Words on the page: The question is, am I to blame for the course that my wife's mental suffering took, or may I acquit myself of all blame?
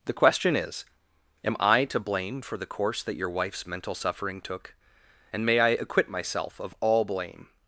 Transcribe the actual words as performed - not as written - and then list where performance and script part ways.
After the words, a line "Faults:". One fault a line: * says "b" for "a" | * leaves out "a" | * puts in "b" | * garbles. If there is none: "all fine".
The question is, am I to blame for the course that your wife's mental suffering took, and may I acquit myself of all blame?
Faults:
* says "your" for "my"
* says "and" for "or"